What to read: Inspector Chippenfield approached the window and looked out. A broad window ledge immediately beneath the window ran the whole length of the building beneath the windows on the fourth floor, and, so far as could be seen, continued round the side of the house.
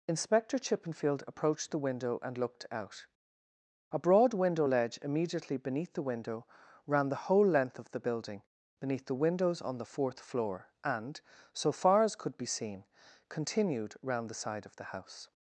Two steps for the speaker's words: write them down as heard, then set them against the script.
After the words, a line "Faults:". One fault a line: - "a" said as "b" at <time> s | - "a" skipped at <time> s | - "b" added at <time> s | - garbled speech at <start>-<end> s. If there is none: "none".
Inspector Chippenfield approached the window and looked out. A broad window ledge immediately beneath the window ran the whole length of the building beneath the windows on the fourth floor, and, so far as could be seen, continued round the side of the house.
Faults:
none